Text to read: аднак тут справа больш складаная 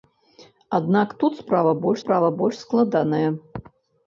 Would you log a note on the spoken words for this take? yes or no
yes